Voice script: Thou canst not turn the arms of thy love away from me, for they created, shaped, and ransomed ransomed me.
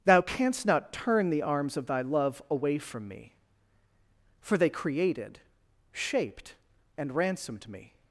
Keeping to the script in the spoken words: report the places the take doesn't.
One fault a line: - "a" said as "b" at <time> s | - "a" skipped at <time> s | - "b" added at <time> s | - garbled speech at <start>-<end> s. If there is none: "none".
- "ransomed" skipped at 7.7 s